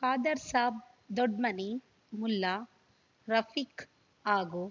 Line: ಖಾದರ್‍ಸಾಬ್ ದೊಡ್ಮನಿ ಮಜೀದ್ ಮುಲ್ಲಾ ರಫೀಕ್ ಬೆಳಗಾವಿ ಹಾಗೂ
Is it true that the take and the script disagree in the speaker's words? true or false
true